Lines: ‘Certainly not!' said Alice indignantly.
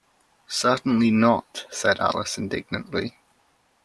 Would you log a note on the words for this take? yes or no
no